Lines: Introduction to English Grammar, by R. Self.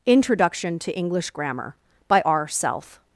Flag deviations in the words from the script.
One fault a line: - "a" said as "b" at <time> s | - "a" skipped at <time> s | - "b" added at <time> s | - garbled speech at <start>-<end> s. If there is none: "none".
none